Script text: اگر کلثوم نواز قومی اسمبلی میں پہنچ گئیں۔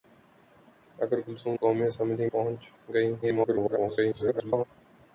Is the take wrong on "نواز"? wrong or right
wrong